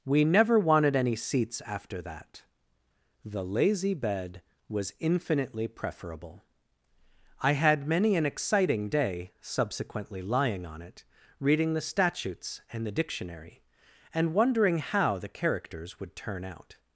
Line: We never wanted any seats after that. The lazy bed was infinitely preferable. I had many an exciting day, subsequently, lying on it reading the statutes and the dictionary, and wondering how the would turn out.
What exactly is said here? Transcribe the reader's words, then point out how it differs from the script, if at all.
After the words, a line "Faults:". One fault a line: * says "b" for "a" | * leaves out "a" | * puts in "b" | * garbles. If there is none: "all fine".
We never wanted any seats after that. The lazy bed was infinitely preferable. I had many an exciting day, subsequently, lying on it reading the statutes and the dictionary, and wondering how the characters would turn out.
Faults:
* puts in "characters"